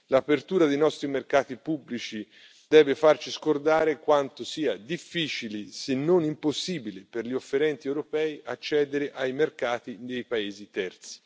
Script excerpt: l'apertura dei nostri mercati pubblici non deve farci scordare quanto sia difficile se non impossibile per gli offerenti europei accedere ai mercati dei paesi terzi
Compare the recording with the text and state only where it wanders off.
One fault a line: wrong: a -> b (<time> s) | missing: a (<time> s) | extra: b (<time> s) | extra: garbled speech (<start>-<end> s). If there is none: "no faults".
missing: non (2.2 s)